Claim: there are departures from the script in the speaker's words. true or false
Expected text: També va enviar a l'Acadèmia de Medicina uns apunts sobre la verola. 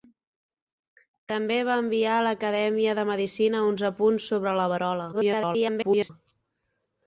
true